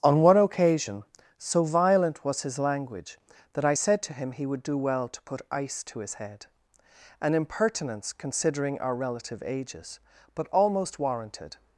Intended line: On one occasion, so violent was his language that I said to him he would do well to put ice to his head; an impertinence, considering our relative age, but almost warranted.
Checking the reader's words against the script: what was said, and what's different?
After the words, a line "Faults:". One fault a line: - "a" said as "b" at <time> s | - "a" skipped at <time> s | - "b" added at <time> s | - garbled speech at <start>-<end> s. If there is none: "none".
On one occasion, so violent was his language that I said to him he would do well to put ice to his head; an impertinence, considering our relative ages, but almost warranted.
Faults:
- "age" said as "ages" at 9.4 s